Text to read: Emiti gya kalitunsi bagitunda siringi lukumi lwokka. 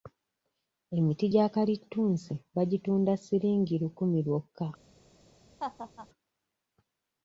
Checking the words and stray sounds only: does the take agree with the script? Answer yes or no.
no